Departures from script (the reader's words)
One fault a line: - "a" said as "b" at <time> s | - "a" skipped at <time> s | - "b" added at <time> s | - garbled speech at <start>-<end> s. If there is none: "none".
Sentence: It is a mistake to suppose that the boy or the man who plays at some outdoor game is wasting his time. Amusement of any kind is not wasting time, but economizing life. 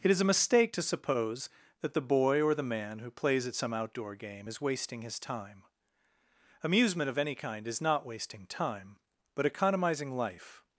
none